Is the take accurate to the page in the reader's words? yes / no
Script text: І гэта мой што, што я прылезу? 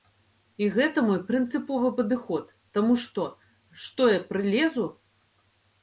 no